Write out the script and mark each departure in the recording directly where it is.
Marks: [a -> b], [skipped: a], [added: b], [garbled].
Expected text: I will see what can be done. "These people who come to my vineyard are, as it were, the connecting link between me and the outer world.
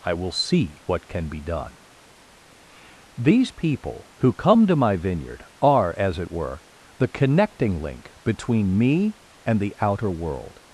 I will see what can be done. "These people who come to my vineyard are, as it were, the connecting link between me and the outer world.